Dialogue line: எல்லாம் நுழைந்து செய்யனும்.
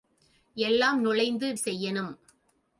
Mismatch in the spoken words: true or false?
false